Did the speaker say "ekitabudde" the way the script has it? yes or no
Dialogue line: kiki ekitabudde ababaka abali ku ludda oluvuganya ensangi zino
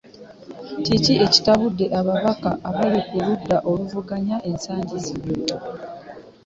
yes